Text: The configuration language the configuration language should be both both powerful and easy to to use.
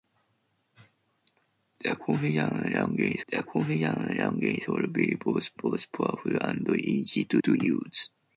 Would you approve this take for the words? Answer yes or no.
yes